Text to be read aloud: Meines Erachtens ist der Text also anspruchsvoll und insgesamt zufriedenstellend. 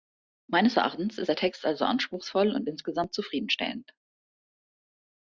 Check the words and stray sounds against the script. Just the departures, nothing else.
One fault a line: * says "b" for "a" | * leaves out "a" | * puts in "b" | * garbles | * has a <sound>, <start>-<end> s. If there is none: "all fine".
all fine